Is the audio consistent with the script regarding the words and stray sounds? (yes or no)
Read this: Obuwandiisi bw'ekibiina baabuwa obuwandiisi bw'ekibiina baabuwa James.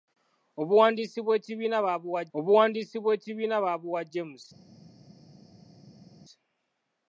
yes